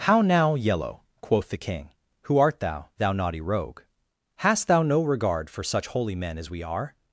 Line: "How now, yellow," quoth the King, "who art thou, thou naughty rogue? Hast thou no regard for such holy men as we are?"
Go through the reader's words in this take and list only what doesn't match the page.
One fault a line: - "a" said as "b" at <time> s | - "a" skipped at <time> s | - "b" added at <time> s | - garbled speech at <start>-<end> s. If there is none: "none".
none